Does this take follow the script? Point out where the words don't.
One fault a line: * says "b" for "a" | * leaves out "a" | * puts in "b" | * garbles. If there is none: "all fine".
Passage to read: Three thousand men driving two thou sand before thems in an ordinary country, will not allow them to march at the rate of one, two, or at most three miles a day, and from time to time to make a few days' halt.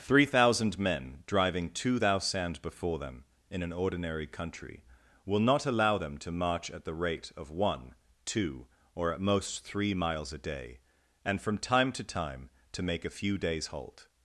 * says "them" for "thems"